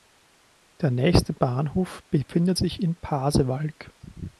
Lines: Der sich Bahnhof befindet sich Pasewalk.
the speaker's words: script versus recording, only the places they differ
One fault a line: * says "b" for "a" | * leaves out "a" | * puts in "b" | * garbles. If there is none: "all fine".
* says "nächste" for "sich"
* puts in "in"